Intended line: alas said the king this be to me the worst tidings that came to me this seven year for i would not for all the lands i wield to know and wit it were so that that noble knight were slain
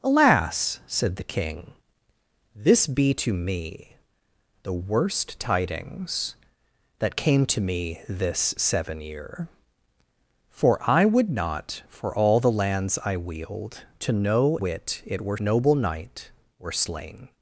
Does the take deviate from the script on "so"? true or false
true